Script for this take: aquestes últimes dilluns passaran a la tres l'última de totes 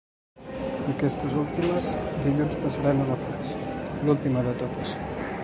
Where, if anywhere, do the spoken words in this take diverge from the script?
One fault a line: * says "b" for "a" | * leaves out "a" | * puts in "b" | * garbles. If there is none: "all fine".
all fine